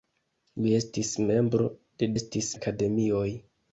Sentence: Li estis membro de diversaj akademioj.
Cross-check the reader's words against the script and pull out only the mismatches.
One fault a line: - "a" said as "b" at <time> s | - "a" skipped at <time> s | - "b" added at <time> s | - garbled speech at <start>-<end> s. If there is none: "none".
- "diversaj" said as "estis" at 2.2 s